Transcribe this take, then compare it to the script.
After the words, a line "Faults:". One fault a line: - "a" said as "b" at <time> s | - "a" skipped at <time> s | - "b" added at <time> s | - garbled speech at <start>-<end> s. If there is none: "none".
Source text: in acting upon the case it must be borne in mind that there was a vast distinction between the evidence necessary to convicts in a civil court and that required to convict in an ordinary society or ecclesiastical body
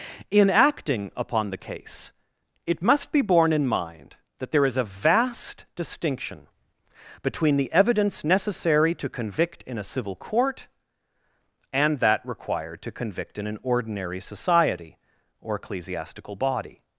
in acting upon the case it must be borne in mind that there is a vast distinction between the evidence necessary to convict in a civil court and that required to convict in an ordinary society or ecclesiastical body
Faults:
- "was" said as "is" at 4.7 s
- "convicts" said as "convict" at 9.1 s